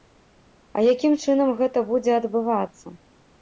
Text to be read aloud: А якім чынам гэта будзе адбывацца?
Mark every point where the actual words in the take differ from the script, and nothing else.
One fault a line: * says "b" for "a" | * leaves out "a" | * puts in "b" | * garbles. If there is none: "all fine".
all fine